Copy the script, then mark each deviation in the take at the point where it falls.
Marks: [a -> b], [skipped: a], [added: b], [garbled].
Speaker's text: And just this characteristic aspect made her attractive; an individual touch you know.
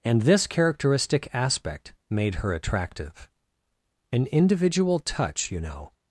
And [skipped: just] this characteristic aspect made her attractive; an individual touch you know.